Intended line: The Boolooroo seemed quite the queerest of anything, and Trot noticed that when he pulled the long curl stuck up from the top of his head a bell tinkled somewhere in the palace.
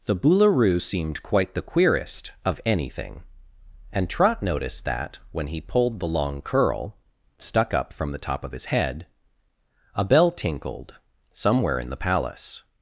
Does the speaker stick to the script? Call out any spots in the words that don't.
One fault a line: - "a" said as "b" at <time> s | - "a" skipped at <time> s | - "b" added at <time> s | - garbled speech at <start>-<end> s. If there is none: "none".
none